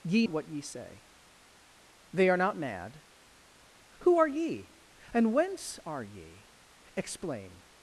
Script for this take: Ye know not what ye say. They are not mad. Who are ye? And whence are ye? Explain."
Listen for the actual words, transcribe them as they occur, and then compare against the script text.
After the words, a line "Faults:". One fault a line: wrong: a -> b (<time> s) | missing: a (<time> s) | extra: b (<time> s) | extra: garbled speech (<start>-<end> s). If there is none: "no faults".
Ye what ye say. They are not mad. Who are ye? And whence are ye? Explain."
Faults:
missing: know not (0.3 s)